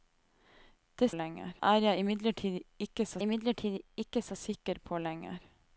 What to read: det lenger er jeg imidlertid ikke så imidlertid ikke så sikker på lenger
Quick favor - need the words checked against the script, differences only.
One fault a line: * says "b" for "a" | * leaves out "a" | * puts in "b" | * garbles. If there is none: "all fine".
all fine